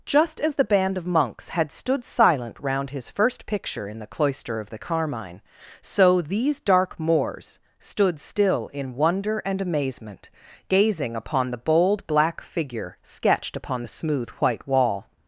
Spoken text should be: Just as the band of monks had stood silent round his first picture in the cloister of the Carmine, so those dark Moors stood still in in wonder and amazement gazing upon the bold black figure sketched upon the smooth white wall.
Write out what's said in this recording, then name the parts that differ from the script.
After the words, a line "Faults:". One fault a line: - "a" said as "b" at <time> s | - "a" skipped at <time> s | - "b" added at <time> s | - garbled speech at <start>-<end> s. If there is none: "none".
Just as the band of monks had stood silent round his first picture in the cloister of the Carmine, so these dark Moors stood still in wonder and amazement gazing upon the bold black figure sketched upon the smooth white wall.
Faults:
- "those" said as "these" at 6.2 s
- "in" skipped at 8.9 s